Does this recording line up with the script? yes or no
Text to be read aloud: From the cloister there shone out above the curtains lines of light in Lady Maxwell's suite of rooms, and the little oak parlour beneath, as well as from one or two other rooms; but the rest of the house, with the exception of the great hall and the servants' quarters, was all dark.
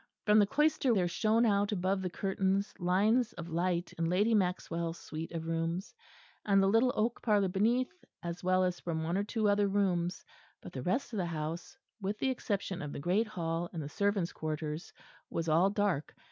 yes